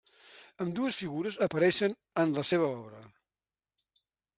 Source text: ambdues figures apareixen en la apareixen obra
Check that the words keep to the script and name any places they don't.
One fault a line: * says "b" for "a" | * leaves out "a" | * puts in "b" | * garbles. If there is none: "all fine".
* says "seva" for "apareixen"